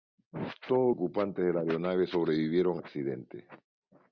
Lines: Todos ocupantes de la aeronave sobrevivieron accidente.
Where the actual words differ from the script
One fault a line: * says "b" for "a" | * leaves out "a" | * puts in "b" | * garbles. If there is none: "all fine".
all fine